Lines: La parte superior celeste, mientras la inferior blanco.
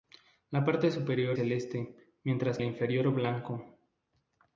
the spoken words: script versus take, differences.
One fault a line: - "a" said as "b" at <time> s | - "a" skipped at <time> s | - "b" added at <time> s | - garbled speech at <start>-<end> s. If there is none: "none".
none